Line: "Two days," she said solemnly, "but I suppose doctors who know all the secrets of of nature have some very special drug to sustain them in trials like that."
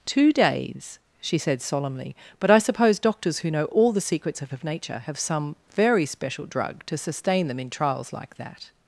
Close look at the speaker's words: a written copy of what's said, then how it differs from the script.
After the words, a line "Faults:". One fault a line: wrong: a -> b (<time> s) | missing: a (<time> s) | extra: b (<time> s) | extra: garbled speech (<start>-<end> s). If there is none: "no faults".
"Two days," she said solemnly, "but I suppose doctors who know all the secrets of of nature have some very special drug to sustain them in trials like that."
Faults:
no faults